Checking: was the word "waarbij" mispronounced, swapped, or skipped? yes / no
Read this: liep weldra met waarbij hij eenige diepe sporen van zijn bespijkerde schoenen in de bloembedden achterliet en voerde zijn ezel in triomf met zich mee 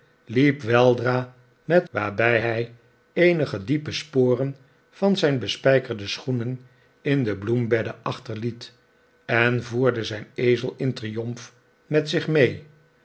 no